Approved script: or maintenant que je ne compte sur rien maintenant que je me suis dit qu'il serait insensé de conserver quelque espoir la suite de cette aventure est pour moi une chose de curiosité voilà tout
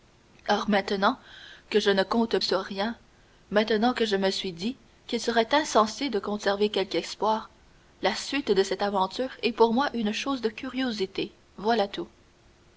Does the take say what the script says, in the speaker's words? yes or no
yes